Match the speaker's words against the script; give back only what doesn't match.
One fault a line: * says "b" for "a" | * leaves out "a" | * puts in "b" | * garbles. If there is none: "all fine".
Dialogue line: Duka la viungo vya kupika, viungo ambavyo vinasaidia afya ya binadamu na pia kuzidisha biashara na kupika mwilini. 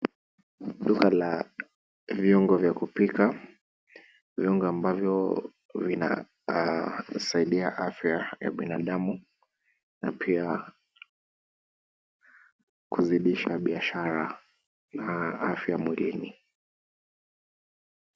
* says "afya" for "kupika"